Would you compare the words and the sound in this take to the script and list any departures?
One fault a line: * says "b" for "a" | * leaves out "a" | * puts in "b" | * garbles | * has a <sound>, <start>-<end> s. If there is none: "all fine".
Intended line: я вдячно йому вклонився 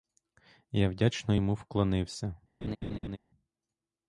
* has a laugh, 2.6-3.2 s